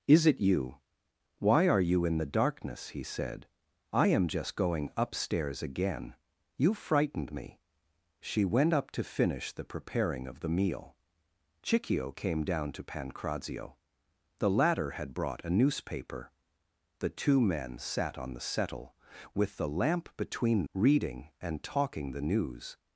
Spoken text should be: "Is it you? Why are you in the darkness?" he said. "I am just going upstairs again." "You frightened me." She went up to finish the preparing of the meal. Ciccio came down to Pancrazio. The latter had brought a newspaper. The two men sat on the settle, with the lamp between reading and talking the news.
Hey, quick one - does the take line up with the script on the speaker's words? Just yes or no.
yes